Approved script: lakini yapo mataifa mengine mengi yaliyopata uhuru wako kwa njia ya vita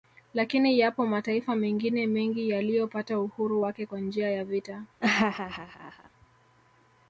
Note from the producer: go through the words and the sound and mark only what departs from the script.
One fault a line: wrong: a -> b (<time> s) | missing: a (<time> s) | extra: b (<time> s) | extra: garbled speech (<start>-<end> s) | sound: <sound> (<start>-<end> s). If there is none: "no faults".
wrong: wako -> wake (3.6 s)
sound: laugh (5.0-6.1 s)